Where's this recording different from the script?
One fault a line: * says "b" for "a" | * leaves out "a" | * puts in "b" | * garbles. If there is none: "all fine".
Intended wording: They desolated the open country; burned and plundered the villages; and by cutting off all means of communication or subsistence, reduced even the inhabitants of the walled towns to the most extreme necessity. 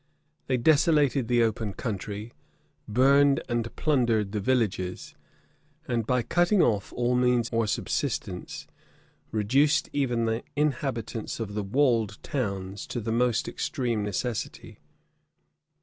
* leaves out "of communication"